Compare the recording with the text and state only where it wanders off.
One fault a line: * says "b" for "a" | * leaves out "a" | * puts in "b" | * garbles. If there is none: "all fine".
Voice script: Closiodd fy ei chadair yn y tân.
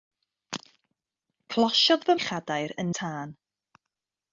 all fine